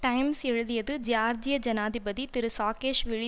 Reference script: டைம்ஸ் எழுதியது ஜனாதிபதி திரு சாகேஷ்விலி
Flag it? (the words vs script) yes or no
yes